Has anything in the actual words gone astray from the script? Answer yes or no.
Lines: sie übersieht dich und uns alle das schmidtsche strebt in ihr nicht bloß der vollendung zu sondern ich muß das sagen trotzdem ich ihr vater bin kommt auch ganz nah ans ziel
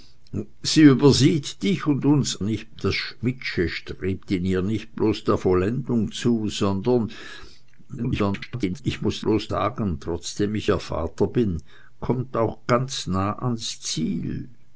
yes